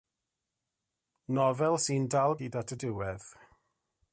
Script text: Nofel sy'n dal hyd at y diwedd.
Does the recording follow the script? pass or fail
pass